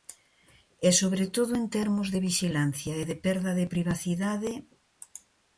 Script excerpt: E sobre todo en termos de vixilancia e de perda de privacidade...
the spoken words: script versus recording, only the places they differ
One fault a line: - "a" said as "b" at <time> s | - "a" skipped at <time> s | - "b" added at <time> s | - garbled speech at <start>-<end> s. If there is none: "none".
none